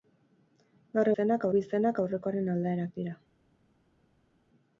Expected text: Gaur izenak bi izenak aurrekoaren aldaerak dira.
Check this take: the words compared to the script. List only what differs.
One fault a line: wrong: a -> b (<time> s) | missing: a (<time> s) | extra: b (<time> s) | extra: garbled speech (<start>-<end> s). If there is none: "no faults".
no faults